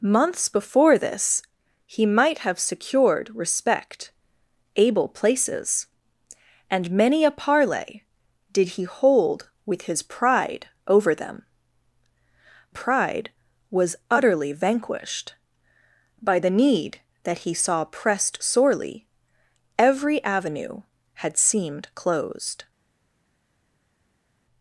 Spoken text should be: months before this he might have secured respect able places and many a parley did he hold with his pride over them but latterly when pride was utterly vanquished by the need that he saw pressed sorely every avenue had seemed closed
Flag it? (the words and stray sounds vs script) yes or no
yes